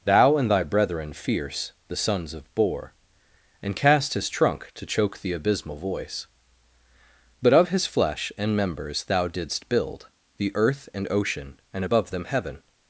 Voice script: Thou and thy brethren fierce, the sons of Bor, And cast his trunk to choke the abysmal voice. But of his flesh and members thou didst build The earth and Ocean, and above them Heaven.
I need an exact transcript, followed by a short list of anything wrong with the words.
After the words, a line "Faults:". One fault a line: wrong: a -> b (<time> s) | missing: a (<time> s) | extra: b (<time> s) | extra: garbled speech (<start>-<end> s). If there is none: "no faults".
Thou and thy brethren fierce, the sons of Bor, And cast his trunk to choke the abysmal voice. But of his flesh and members thou didst build The earth and Ocean, and above them Heaven.
Faults:
no faults